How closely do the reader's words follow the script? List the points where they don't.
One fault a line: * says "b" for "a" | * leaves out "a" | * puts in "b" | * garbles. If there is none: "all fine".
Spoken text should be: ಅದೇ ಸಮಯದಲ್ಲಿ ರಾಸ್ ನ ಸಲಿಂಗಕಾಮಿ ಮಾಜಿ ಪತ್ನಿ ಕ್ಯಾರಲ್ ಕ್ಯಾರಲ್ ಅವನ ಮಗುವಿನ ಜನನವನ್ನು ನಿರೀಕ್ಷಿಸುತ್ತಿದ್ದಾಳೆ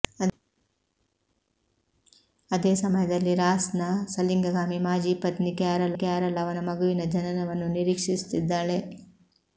all fine